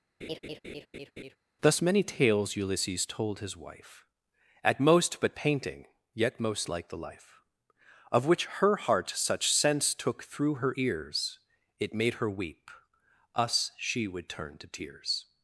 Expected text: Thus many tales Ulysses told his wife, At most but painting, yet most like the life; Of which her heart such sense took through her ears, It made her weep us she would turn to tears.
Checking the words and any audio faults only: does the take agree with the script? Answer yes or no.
no